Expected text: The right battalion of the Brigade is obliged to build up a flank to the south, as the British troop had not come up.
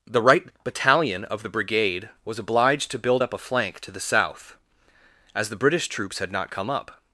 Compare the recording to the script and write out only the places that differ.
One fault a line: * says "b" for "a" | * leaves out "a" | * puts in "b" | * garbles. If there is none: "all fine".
* says "was" for "is"
* says "troops" for "troop"